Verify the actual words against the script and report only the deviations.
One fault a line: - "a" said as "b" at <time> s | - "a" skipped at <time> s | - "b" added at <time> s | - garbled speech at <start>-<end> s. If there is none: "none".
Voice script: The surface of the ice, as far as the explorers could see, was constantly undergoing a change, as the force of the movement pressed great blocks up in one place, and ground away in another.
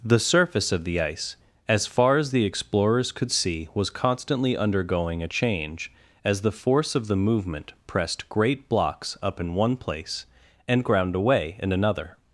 none